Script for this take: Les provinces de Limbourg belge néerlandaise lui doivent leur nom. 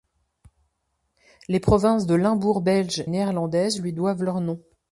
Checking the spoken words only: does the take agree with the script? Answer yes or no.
yes